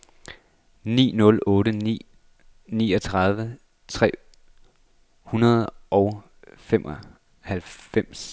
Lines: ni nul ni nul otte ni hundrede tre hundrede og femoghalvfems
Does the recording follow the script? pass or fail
fail